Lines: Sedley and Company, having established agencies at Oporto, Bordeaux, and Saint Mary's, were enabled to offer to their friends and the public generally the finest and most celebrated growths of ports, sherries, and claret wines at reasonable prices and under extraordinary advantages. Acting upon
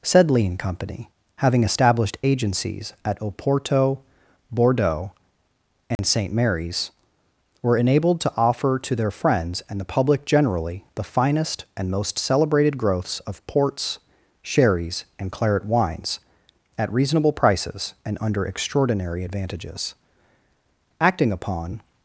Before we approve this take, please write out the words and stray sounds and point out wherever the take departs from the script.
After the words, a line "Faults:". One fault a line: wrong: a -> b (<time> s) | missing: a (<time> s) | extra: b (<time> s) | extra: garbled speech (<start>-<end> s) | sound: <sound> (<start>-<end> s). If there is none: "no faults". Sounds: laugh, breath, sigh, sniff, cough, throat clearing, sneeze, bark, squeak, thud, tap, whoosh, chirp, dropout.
Sedley and Company, having established agencies at Oporto, Bordeaux, and Saint Mary's, were enabled to offer to their friends and the public generally the finest and most celebrated growths of ports, sherries, and claret wines at reasonable prices and under extraordinary advantages. Acting upon
Faults:
sound: dropout (6.0-6.0 s)